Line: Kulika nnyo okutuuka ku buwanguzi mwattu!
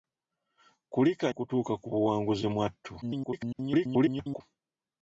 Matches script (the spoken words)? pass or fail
fail